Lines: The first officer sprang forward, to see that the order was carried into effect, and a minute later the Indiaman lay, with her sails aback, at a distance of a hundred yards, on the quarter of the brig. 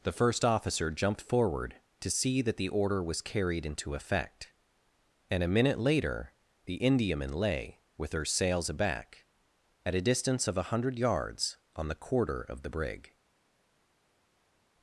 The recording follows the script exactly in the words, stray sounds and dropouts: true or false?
false